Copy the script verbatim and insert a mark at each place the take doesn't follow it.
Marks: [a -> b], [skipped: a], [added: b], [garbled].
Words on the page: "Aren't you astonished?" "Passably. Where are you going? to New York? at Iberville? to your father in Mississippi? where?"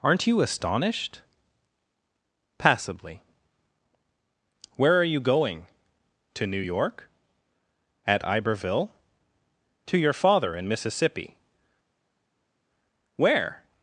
"Aren't you astonished?" "Passably. Where are you going? to New York? at Iberville? to your father in Mississippi? where?"